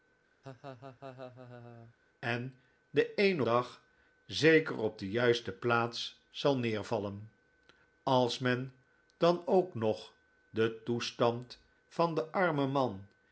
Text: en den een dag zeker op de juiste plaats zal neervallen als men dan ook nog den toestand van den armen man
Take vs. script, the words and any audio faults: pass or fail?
fail